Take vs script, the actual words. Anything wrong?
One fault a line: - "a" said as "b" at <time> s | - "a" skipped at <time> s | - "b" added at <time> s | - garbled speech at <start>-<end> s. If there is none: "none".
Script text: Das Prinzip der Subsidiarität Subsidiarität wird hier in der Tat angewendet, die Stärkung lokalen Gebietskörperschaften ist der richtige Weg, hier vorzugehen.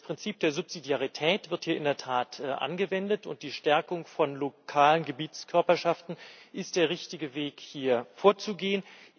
- "Subsidiarität" skipped at 1.5 s
- "und" added at 3.3 s
- "von" added at 4.0 s